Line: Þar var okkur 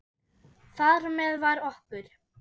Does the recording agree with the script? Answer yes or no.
no